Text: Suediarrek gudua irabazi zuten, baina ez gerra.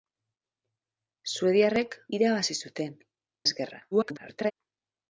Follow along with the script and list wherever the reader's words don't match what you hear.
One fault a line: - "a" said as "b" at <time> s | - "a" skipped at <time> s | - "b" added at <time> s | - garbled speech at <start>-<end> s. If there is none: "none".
- "gudua" skipped at 2.0 s
- "baina" skipped at 3.0 s
- garbled speech at 3.9-4.5 s